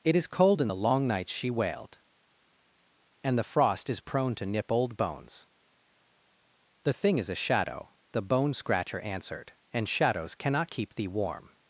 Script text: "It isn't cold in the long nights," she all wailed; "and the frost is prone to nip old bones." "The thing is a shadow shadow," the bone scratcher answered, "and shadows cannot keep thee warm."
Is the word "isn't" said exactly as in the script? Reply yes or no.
no